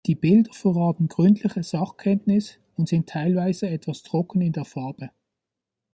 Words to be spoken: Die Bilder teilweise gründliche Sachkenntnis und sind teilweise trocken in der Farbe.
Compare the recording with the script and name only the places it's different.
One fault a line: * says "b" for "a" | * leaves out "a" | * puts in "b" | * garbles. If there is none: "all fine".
* says "verraten" for "teilweise"
* puts in "etwas"